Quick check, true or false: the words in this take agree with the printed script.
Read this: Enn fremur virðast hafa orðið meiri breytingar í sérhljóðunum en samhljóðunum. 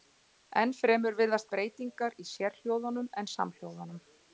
false